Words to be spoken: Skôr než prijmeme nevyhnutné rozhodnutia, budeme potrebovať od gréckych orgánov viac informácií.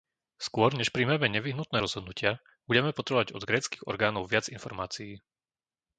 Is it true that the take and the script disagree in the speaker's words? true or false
false